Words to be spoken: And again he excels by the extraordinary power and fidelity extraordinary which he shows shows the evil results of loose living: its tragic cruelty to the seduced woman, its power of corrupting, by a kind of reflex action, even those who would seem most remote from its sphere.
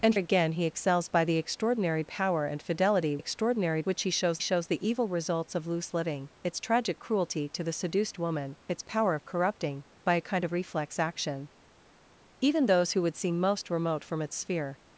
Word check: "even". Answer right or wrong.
right